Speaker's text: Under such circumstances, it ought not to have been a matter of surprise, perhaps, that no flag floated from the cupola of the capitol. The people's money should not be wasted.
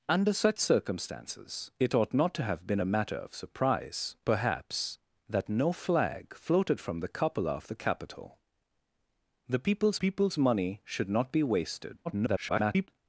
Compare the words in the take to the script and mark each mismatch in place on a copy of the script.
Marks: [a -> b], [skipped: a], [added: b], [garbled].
Under such circumstances, it ought not to have been a matter of surprise, perhaps, that no flag floated from the cupola of the capitol. The people's [added: people's] money should not be wasted. [garbled]